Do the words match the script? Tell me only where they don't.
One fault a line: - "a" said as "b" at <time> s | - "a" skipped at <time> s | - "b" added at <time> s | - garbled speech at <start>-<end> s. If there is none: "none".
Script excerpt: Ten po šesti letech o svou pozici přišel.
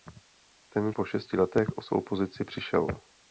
none